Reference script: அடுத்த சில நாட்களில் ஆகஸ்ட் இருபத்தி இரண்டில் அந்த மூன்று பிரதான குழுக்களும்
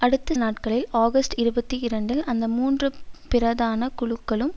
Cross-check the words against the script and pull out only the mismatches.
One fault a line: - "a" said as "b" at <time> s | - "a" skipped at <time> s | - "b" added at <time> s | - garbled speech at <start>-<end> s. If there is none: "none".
- "சில" skipped at 0.3 s